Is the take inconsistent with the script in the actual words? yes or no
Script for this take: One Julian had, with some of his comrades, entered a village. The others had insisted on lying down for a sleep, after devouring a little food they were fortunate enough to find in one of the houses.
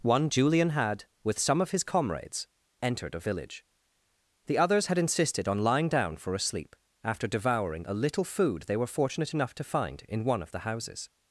no